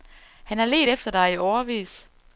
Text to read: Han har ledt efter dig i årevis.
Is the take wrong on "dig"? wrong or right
right